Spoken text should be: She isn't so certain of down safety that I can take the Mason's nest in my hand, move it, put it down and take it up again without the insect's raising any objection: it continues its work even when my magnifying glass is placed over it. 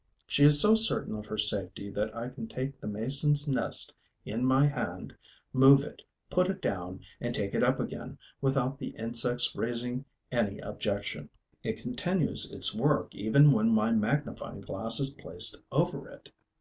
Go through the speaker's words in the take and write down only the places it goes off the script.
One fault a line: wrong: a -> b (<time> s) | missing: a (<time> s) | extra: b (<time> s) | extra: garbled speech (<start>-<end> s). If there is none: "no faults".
wrong: isn't -> is (0.4 s)
wrong: down -> her (1.3 s)